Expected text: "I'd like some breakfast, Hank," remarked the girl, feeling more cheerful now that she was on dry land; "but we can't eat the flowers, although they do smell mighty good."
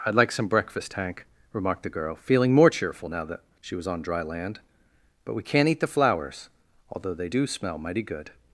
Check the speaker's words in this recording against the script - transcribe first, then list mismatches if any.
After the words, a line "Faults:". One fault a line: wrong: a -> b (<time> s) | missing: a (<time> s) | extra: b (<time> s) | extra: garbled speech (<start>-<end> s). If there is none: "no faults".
"I'd like some breakfast, Hank," remarked the girl, feeling more cheerful now that she was on dry land; "but we can't eat the flowers, although they do smell mighty good."
Faults:
no faults